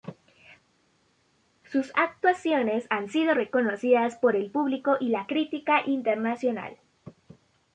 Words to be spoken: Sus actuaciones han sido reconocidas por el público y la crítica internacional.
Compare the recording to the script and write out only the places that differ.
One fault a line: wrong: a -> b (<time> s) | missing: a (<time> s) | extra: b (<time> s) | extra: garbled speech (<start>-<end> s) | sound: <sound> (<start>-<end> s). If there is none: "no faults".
no faults